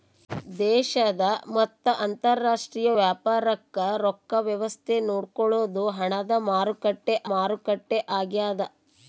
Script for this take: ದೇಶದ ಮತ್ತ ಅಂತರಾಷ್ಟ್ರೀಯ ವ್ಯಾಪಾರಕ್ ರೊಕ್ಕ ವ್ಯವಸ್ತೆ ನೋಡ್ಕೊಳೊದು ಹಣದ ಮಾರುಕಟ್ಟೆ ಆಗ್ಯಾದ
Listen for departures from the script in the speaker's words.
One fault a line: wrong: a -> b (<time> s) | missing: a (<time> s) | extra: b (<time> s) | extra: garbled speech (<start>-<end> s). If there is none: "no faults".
extra: ಮಾರುಕಟ್ಟೆ (7.3 s)